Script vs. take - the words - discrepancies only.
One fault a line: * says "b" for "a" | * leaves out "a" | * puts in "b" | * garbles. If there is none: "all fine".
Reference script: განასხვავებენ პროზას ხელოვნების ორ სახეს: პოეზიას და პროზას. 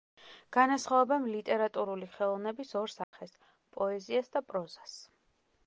* says "ლიტერატურული" for "პროზას"